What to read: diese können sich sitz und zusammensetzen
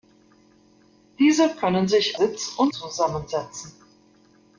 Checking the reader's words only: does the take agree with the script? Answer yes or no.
yes